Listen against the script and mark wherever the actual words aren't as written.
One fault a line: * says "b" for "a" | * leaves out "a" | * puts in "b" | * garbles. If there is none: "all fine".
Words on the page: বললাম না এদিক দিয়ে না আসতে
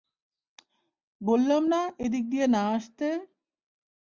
all fine